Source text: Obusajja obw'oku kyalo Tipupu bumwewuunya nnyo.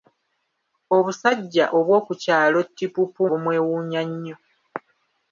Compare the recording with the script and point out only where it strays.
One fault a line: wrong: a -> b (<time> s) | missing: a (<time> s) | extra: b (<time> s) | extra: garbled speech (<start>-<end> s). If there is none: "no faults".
no faults